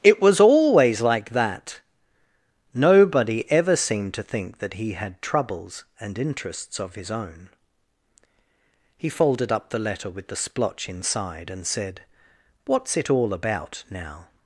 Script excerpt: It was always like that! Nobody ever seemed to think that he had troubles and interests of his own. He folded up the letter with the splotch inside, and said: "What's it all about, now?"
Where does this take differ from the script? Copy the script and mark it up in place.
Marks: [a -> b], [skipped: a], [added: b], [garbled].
It was always like that! Nobody ever seemed to think that he had troubles and interests of his own. He folded up the letter with the splotch inside, and said: "What's it all about, now?"